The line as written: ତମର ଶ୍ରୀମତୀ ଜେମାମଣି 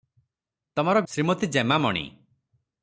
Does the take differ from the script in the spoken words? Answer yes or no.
no